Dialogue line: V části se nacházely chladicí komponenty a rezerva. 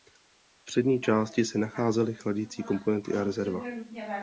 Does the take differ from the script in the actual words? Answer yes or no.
yes